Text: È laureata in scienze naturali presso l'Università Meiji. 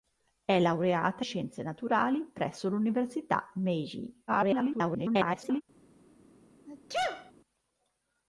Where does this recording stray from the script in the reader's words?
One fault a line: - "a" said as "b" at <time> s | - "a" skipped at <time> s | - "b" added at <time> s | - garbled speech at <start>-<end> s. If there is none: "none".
- "in" skipped at 1.2 s
- garbled speech at 4.3-5.6 s